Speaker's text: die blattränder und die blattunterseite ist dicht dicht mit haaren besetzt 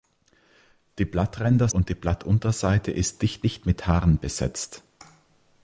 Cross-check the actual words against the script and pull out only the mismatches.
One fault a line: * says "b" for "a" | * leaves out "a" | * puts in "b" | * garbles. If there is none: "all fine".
all fine